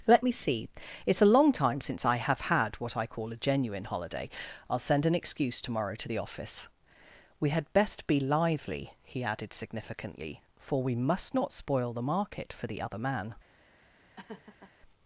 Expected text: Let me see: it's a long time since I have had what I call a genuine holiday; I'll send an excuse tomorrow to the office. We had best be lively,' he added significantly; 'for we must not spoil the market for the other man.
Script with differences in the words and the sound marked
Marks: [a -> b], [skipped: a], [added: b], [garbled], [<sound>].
Let me see: it's a long time since I have had what I call a genuine holiday; I'll send an excuse tomorrow to the office. We had best be lively,' he added significantly; 'for we must not spoil the market for the other man. [laugh]